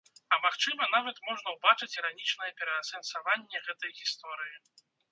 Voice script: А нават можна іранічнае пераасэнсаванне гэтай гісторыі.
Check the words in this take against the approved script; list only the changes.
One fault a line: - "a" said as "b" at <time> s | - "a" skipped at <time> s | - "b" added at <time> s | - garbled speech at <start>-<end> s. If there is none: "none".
- "магчыма" added at 0.5 s
- "ўбачыць" added at 1.6 s